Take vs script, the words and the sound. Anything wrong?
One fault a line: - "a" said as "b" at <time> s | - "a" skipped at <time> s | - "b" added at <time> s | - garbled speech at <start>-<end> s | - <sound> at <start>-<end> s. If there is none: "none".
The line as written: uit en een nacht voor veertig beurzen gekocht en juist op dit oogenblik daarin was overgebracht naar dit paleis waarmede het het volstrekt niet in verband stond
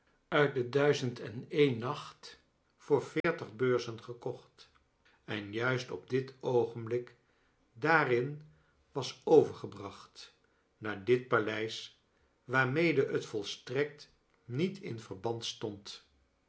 - "de duizend" added at 0.5 s
- dropout at 3.2-3.2 s
- "het" skipped at 13.3 s